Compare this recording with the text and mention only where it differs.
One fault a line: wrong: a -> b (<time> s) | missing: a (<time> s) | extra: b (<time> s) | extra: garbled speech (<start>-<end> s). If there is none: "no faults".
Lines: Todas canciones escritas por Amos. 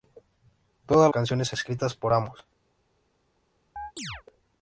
no faults